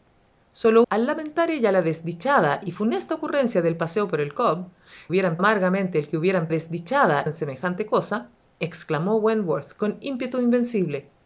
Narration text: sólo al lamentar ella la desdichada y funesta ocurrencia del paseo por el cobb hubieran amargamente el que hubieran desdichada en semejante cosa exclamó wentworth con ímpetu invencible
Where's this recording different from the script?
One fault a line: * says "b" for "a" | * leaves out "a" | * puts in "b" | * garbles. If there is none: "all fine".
all fine